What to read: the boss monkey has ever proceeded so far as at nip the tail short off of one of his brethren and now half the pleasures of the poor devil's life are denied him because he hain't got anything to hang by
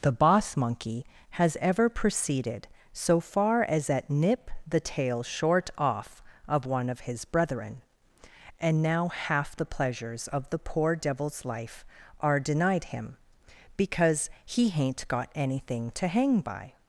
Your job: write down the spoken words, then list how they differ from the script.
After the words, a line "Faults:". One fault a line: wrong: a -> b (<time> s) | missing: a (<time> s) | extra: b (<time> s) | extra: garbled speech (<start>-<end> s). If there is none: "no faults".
the boss monkey has ever proceeded so far as at nip the tail short off of one of his brethren and now half the pleasures of the poor devil's life are denied him because he hain't got anything to hang by
Faults:
no faults